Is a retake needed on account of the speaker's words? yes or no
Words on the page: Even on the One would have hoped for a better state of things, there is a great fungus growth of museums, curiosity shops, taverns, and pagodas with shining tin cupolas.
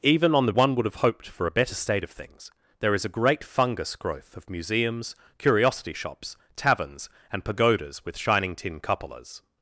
no